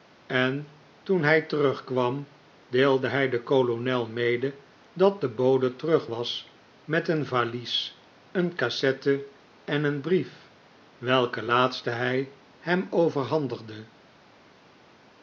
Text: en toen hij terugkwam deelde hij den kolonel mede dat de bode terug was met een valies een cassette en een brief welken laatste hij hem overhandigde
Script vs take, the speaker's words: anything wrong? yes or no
no